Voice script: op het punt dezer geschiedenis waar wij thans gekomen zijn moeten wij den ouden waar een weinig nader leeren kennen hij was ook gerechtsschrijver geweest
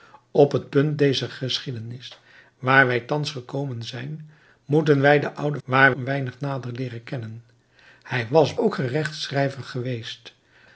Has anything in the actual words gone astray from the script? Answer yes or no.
no